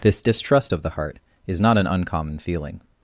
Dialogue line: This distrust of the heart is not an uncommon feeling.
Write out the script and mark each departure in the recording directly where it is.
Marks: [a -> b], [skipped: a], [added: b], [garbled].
This distrust of the heart is not an uncommon feeling.